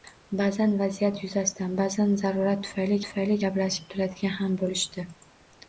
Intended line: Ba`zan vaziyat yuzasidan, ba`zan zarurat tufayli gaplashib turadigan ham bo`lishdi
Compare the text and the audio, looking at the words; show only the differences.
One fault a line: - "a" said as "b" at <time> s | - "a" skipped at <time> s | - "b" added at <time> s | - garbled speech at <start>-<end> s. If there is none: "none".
- "tufayli" added at 3.1 s